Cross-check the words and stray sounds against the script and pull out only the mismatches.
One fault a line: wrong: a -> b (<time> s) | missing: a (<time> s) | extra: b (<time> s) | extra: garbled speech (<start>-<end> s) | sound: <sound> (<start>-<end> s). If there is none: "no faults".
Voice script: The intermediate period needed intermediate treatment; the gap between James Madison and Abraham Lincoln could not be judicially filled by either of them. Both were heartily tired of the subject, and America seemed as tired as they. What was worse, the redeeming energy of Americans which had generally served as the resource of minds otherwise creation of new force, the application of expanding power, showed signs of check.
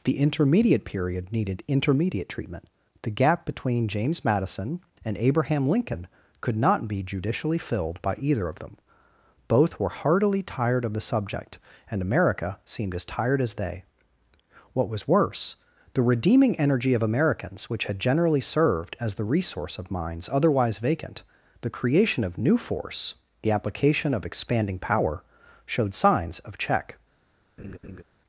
extra: vacant the (20.8 s)
sound: laugh (27.6-28.0 s)